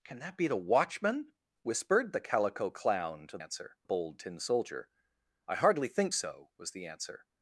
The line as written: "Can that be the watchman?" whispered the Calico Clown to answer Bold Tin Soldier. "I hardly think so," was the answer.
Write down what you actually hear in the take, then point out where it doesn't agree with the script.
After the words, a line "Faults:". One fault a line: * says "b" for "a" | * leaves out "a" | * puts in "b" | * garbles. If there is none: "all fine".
"Can that be the watchman?" whispered the Calico Clown to answer Bold Tin Soldier. "I hardly think so," was the answer.
Faults:
all fine